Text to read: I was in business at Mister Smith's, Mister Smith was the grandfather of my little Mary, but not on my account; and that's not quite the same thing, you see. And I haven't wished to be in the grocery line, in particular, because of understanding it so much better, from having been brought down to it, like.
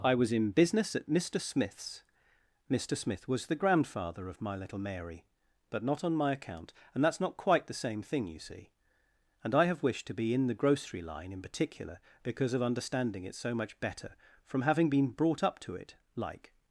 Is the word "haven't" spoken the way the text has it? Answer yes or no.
no